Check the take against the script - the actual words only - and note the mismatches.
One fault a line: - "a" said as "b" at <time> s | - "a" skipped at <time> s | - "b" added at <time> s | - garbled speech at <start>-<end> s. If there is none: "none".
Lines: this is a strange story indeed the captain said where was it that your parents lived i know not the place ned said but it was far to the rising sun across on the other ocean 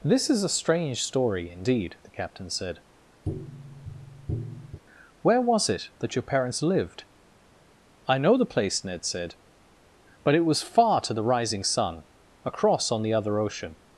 - "not" skipped at 8.4 s